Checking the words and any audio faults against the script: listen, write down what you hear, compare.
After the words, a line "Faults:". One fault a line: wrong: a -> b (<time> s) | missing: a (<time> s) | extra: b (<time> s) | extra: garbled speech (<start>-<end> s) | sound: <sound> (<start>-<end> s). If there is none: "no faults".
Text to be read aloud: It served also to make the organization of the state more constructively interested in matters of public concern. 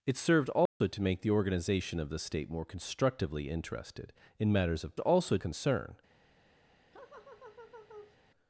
It served also to make the organization of the state more constructively interested in matters of also concern.
Faults:
sound: dropout (0.7-0.8 s)
wrong: public -> also (5.0 s)
sound: laugh (6.9-8.2 s)